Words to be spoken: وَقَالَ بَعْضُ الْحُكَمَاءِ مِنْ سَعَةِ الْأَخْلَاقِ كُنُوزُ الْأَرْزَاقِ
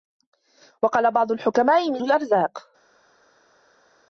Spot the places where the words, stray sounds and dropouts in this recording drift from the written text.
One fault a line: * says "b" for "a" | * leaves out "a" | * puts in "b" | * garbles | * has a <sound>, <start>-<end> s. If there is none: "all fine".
* leaves out "سَعَةِ الْأَخْلَاقِ كُنُوزُ"